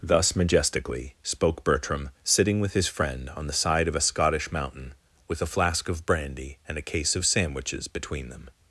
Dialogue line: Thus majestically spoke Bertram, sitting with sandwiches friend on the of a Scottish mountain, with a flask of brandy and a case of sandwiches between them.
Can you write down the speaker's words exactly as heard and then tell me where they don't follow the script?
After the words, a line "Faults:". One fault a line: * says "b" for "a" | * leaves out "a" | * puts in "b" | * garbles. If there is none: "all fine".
Thus majestically spoke Bertram, sitting with his friend on the side of a Scottish mountain, with a flask of brandy and a case of sandwiches between them.
Faults:
* says "his" for "sandwiches"
* puts in "side"